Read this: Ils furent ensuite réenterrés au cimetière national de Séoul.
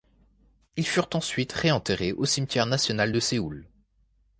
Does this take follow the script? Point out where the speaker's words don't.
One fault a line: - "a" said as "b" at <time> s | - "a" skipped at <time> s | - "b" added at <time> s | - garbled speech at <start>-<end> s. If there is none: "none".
none